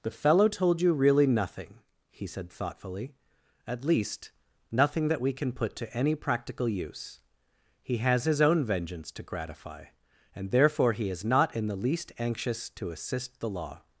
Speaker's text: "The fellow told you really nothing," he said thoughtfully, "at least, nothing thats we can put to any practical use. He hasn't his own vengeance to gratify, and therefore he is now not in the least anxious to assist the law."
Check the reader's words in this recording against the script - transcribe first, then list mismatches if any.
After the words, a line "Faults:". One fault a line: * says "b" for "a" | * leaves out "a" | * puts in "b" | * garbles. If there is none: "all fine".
"The fellow told you really nothing," he said thoughtfully, "at least, nothing that we can put to any practical use. He has his own vengeance to gratify, and therefore he is not in the least anxious to assist the law."
Faults:
* says "that" for "thats"
* says "has" for "hasn't"
* leaves out "now"